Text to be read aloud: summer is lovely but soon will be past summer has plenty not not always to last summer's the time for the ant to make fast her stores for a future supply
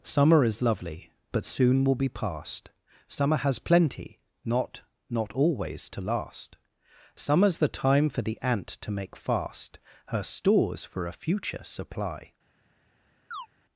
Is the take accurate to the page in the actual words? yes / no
yes